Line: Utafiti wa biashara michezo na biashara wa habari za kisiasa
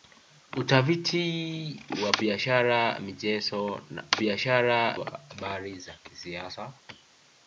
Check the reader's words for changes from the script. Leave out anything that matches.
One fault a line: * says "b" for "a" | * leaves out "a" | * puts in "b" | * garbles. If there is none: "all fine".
all fine